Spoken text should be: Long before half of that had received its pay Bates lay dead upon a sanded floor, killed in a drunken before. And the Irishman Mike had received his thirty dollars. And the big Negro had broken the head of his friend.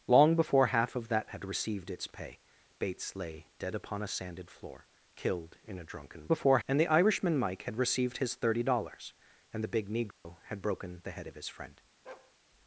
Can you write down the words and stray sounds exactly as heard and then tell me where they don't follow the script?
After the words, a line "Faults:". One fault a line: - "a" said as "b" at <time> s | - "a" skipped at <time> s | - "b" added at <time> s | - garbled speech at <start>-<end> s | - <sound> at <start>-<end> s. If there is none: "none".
Long before half of that had received its pay Bates lay dead upon a sanded floor, killed in a drunken before. And the Irishman Mike had received his thirty dollars. And the big Negro had broken the head of his friend.
Faults:
- dropout at 10.1-10.3 s
- bark at 12.0-12.3 s